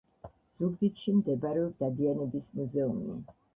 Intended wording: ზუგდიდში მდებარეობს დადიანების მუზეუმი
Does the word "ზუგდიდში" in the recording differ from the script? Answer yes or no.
no